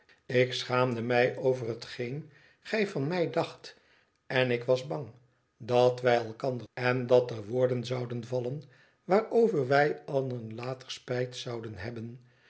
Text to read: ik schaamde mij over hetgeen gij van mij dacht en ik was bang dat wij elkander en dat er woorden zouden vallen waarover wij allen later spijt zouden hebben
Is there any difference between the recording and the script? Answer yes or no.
no